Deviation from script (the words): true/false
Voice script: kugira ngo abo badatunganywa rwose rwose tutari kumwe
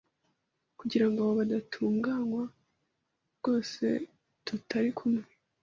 true